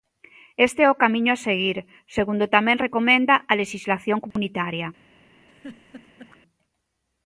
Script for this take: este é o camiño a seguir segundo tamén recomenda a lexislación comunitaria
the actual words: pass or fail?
pass